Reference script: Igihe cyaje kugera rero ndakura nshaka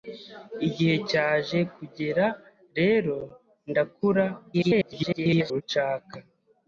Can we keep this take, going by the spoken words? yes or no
no